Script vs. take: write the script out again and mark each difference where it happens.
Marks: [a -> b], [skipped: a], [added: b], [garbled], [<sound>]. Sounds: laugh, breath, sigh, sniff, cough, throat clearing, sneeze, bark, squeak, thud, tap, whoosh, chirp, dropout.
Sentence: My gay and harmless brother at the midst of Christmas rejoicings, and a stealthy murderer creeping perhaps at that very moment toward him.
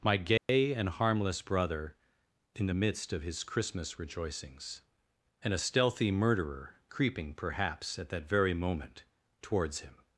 My gay [dropout] and harmless brother [at -> in] the midst of [added: his] Christmas rejoicings, and a stealthy murderer creeping perhaps at that very moment [toward -> towards] him.